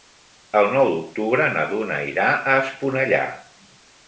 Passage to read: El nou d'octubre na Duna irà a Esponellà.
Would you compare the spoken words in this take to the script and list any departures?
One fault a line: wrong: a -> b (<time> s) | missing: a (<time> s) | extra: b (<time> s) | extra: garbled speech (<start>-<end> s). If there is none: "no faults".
no faults